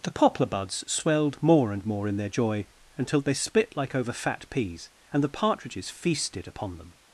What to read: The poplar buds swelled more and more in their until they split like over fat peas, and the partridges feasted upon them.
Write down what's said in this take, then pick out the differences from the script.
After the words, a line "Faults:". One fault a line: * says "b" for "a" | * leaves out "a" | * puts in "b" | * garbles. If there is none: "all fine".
The poplar buds swelled more and more in their joy, until they split like over fat peas, and the partridges feasted upon them.
Faults:
* puts in "joy"